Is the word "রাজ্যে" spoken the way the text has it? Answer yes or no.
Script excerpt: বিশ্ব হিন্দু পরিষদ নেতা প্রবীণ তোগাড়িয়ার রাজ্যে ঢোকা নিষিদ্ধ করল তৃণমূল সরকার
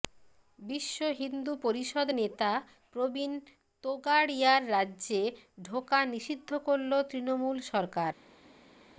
yes